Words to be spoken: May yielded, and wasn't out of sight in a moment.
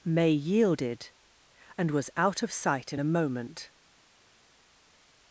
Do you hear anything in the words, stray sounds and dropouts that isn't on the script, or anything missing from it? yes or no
yes